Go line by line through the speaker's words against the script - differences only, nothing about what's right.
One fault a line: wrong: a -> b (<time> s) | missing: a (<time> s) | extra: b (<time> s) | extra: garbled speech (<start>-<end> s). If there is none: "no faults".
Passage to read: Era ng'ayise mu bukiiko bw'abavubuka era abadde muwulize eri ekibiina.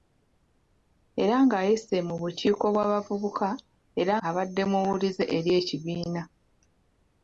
no faults